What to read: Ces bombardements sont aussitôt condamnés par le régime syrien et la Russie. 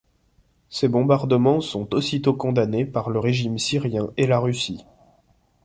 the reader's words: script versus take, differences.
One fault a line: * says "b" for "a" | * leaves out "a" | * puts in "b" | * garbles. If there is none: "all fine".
all fine